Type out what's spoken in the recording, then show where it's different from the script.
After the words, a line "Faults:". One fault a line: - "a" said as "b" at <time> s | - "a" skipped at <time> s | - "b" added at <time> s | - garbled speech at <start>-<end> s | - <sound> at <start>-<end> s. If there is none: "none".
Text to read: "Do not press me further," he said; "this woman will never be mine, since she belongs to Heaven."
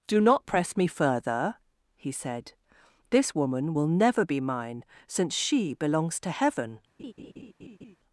"Do not press me further," he said; "this woman will never be mine, since she belongs to Heaven."
Faults:
- laugh at 7.0-8.0 s